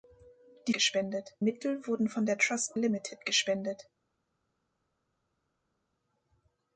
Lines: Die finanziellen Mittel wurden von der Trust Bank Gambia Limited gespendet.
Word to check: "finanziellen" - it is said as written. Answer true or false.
false